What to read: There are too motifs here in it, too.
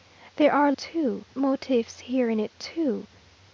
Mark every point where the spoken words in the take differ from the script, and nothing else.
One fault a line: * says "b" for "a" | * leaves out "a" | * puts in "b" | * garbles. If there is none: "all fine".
all fine